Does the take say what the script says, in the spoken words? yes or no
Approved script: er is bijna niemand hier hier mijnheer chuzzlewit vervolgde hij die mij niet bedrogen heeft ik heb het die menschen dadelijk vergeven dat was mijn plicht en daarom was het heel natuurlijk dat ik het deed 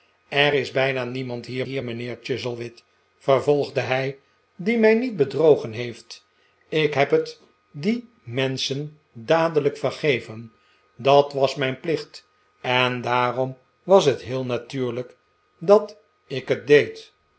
yes